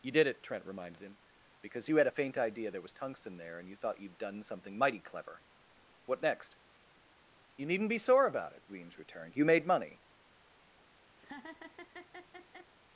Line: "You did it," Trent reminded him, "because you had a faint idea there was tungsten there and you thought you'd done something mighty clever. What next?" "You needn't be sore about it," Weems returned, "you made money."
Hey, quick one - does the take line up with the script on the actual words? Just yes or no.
yes